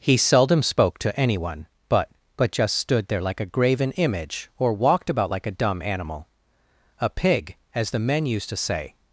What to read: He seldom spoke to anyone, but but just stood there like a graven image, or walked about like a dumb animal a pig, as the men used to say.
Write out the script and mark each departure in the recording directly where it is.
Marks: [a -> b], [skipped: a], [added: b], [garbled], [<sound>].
He seldom spoke to anyone, but but just stood there like a graven image, or walked about like a dumb animal a pig, as the men used to say.